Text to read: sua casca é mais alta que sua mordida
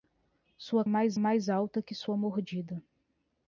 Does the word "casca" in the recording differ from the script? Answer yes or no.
yes